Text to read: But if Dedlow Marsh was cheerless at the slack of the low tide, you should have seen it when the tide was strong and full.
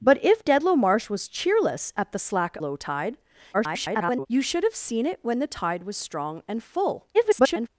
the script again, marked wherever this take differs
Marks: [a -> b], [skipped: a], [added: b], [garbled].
But if Dedlow Marsh was cheerless at the slack [skipped: of the] low tide, [garbled] you should have seen it when the tide was strong and full. [garbled]